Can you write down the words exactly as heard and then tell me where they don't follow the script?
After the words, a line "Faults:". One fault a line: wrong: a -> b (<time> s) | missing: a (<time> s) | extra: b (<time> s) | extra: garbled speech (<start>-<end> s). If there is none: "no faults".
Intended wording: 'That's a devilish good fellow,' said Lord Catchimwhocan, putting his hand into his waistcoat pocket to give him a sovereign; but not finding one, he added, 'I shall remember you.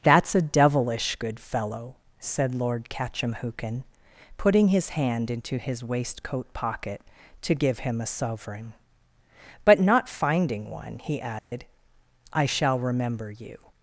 'That's a devilish good fellow,' said Lord Catchimwhocan, putting his hand into his waistcoat pocket to give him a sovereign; but not finding one, he added, 'I shall remember you.
Faults:
no faults